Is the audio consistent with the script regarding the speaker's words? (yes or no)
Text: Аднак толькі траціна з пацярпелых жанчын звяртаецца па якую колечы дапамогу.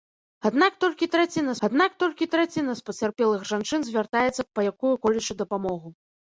no